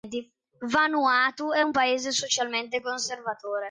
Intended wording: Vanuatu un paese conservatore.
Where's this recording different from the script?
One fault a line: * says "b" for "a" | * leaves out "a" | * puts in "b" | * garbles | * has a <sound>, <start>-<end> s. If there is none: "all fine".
* puts in "è"
* puts in "socialmente"